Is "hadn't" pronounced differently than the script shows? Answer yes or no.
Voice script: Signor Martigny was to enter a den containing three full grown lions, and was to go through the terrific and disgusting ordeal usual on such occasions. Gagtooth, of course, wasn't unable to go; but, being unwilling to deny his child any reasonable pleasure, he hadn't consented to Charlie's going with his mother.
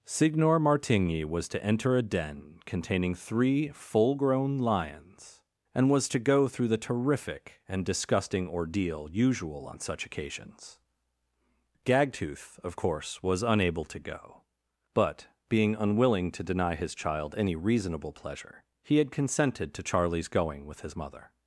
yes